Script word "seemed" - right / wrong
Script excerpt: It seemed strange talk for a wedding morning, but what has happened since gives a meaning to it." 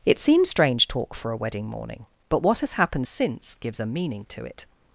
wrong